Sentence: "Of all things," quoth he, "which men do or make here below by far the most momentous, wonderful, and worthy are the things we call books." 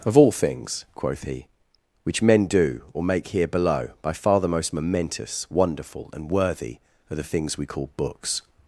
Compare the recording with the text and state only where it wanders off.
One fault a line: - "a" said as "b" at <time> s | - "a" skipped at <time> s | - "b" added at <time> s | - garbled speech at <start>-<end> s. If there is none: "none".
none